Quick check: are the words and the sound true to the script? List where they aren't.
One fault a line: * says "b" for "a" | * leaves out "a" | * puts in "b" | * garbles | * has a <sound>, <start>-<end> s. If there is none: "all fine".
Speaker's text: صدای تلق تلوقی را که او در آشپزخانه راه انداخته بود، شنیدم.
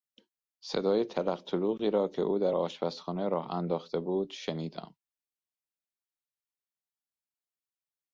all fine